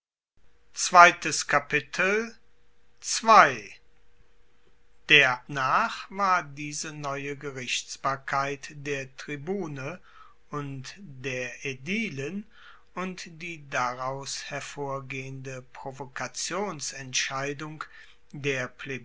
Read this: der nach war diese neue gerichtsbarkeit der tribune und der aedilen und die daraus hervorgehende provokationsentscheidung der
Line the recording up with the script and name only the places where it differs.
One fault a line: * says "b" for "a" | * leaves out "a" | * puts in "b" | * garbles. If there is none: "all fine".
all fine